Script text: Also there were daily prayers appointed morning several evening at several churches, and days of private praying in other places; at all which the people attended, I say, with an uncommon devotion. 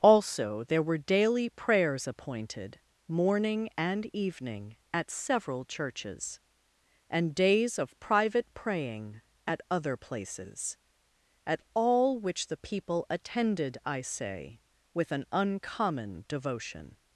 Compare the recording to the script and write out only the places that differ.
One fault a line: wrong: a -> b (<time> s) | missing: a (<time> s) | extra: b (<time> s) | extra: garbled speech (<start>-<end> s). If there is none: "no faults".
wrong: several -> and (3.8 s)
wrong: in -> at (9.4 s)